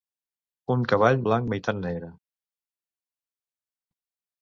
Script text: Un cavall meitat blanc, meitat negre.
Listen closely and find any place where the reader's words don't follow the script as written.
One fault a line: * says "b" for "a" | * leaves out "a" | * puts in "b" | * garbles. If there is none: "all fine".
* leaves out "meitat"